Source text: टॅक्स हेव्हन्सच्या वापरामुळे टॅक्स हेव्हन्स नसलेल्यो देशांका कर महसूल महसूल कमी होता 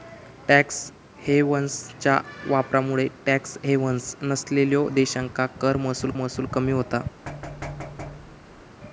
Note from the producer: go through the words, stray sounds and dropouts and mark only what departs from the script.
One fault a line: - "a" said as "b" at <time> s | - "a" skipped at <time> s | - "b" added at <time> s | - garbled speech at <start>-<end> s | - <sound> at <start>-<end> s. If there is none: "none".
- thud at 7.3-8.6 s